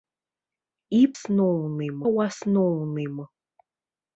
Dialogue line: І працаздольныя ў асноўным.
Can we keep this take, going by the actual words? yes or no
no